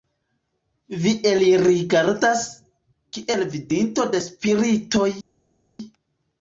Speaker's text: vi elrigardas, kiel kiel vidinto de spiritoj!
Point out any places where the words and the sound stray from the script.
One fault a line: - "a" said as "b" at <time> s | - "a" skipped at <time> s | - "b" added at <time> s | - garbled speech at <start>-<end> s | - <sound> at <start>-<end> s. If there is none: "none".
- "kiel" skipped at 3.5 s